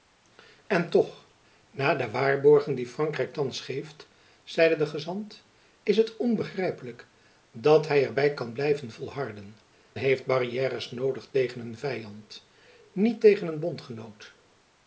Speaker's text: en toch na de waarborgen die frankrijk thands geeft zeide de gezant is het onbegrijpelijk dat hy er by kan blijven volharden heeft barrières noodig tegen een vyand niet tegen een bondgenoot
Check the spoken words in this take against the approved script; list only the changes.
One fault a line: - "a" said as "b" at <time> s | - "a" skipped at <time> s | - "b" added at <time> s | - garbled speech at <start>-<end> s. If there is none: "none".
none